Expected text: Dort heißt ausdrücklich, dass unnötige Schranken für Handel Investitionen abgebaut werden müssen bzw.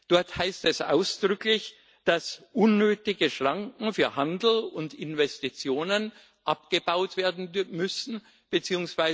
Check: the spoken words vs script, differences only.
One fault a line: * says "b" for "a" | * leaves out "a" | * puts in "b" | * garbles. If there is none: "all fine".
* puts in "es"
* puts in "und"